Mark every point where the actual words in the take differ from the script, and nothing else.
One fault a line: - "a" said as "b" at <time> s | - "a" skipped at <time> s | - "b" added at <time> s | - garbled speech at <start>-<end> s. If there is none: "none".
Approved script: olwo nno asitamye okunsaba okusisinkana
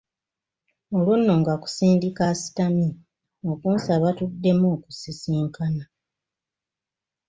- "nga kusindika" added at 1.4 s
- "tuddemu" added at 4.2 s